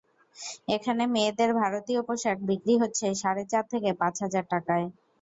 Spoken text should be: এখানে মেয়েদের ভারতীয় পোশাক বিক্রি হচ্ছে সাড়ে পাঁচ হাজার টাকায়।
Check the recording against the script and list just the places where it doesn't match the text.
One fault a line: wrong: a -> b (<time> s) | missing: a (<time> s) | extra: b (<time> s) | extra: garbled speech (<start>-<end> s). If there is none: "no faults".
extra: চার থেকে (3.5 s)